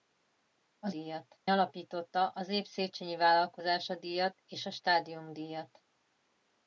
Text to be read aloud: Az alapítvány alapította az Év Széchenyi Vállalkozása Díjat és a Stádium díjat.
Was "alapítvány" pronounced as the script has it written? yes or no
no